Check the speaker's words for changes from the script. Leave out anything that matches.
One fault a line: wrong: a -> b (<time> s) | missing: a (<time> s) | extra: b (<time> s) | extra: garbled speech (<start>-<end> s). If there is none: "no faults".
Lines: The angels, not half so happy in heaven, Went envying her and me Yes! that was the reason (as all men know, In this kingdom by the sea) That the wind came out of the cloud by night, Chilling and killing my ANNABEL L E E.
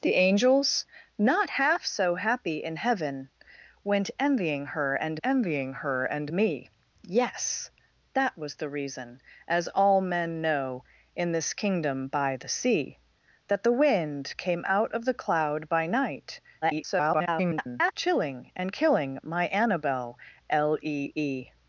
extra: envying her and (5.2 s)
extra: garbled speech (16.6-17.9 s)